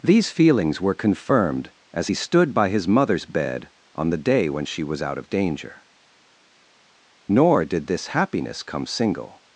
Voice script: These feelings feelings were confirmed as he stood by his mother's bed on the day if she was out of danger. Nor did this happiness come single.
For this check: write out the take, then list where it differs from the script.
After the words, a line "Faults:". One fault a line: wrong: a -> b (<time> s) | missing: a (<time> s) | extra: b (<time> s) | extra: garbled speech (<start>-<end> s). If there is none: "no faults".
These feelings were confirmed as he stood by his mother's bed on the day when she was out of danger. Nor did this happiness come single.
Faults:
missing: feelings (0.8 s)
wrong: if -> when (4.5 s)